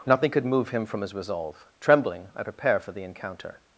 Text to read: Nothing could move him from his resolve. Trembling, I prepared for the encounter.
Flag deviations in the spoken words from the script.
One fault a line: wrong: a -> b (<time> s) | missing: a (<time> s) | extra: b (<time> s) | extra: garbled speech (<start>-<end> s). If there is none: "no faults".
wrong: prepared -> prepare (2.4 s)